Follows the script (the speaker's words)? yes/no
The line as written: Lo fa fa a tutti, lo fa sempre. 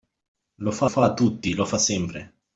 yes